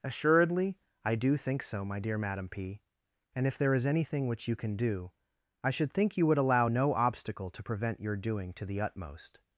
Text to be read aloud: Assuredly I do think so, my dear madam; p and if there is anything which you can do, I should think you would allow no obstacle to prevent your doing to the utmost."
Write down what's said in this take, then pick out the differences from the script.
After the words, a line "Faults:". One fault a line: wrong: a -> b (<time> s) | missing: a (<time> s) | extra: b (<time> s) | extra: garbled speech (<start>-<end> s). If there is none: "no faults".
Assuredly I do think so, my dear madam; p and if there is anything which you can do, I should think you would allow no obstacle to prevent your doing to the utmost."
Faults:
no faults